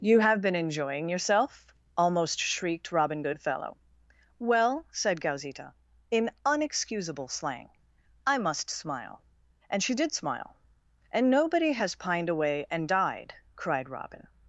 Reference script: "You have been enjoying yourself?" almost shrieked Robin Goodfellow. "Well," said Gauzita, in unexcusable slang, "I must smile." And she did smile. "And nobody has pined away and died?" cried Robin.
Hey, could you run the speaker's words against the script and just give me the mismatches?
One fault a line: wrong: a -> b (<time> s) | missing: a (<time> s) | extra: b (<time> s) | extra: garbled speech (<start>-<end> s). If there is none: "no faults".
no faults